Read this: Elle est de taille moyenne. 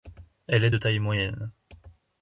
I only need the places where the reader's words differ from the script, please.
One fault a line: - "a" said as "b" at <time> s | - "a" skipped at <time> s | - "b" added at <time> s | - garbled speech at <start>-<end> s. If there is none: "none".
none